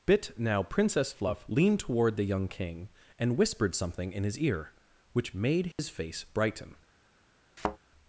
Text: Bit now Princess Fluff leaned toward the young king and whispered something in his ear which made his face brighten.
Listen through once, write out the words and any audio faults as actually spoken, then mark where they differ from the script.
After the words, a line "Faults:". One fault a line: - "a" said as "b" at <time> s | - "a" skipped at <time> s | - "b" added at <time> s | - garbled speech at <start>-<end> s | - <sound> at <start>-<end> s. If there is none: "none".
Bit now Princess Fluff leaned toward the young king and whispered something in his ear which made his face brighten.
Faults:
- dropout at 5.7-5.8 s
- thud at 7.6-7.8 s